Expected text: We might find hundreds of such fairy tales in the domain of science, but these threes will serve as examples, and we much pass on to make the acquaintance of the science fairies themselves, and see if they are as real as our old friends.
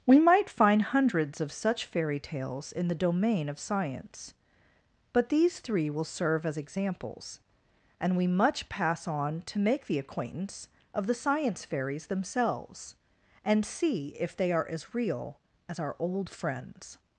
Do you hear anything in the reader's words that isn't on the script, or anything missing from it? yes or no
yes